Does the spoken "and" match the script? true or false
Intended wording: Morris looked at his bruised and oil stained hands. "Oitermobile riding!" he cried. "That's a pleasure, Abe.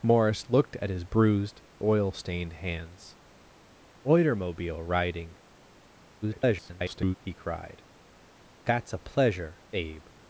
false